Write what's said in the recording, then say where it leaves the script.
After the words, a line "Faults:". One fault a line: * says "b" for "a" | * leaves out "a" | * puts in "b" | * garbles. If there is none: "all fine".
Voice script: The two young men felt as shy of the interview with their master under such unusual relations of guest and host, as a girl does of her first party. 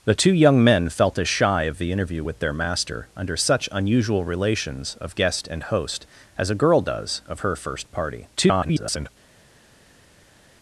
The two young men felt as shy of the interview with their master under such unusual relations of guest and host, as a girl does of her first party. [garbled]
Faults:
* garbles